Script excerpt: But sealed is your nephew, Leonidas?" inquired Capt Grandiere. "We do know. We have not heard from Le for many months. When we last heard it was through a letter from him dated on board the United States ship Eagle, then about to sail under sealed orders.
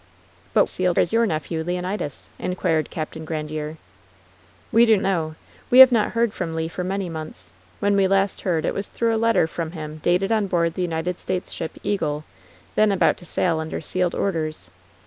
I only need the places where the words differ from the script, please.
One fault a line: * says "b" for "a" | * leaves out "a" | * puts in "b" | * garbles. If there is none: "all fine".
all fine